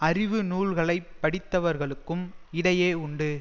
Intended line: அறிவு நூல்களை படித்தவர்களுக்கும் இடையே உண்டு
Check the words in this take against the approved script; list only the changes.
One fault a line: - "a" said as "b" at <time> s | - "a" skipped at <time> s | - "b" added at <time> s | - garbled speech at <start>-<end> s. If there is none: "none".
none